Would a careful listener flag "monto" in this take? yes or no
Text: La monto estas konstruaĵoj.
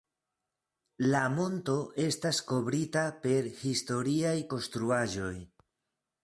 no